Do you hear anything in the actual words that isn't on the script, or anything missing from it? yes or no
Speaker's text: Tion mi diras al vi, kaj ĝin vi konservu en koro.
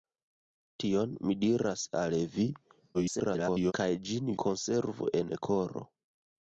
yes